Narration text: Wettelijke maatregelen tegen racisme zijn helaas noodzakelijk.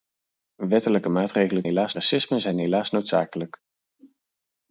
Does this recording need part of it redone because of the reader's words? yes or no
yes